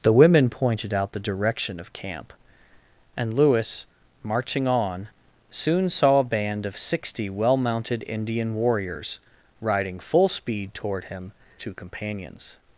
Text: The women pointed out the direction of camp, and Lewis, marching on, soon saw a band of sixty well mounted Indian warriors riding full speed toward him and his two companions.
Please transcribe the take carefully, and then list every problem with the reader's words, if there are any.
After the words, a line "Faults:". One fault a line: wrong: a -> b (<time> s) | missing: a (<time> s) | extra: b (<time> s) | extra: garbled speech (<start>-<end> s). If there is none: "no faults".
The women pointed out the direction of camp, and Lewis, marching on, soon saw a band of sixty well mounted Indian warriors riding full speed toward him two companions.
Faults:
missing: and his (11.3 s)